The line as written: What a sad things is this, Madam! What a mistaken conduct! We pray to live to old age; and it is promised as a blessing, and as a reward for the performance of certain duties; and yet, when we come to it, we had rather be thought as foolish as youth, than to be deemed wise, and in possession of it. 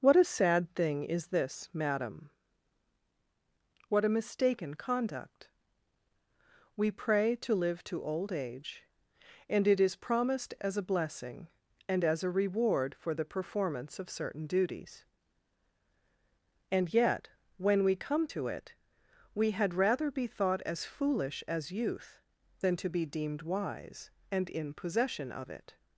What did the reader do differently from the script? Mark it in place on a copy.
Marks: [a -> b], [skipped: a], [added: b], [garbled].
What a sad [things -> thing] is this, Madam! What a mistaken conduct! We pray to live to old age; and it is promised as a blessing, and as a reward for the performance of certain duties; and yet, when we come to it, we had rather be thought as foolish as youth, than to be deemed wise, and in possession of it.